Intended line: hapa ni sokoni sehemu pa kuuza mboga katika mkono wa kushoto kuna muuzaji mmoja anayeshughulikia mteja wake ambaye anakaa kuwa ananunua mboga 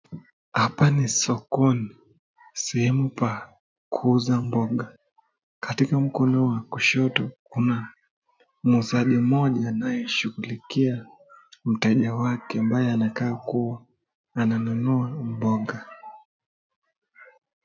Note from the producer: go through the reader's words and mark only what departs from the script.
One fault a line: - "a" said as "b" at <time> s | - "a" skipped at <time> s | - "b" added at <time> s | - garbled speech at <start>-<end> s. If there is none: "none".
none